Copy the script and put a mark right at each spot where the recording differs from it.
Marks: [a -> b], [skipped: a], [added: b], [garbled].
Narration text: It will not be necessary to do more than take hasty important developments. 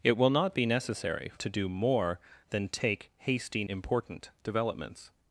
It will not be necessary to do more than take hasty important developments.